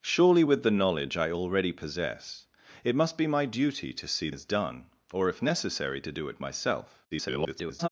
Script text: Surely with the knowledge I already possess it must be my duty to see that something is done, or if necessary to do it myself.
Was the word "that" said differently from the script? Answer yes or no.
yes